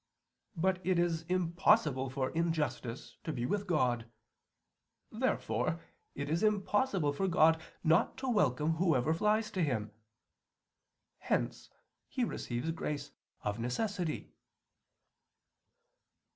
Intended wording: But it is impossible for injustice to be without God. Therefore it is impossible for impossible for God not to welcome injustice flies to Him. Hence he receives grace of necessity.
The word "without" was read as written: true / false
false